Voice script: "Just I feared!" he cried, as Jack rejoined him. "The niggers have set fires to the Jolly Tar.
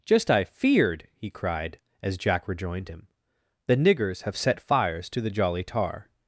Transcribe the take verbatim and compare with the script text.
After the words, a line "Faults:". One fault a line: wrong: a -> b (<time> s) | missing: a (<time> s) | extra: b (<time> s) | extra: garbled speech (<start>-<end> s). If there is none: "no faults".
"Just I feared!" he cried, as Jack rejoined him. "The niggers have set fires to the Jolly Tar.
Faults:
no faults